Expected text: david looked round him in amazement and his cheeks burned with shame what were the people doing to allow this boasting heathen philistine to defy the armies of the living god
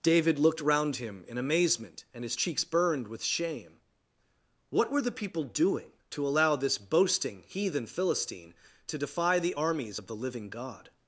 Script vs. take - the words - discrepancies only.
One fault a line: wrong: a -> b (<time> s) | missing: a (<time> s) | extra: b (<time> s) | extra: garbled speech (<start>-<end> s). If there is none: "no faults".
no faults